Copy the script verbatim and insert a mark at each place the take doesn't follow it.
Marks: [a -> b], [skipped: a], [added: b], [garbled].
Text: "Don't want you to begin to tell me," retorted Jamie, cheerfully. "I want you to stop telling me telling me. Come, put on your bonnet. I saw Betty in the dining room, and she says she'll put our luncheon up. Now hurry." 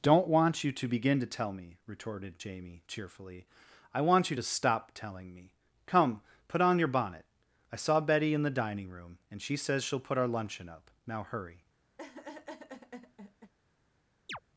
"Don't want you to begin to tell me," retorted Jamie, cheerfully. "I want you to stop telling me [skipped: telling me.] Come, put on your bonnet. I saw Betty in the dining room, and she says she'll put our luncheon up. Now hurry."